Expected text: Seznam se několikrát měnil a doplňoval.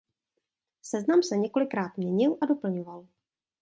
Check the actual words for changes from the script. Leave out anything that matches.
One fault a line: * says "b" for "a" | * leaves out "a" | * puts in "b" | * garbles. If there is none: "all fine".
all fine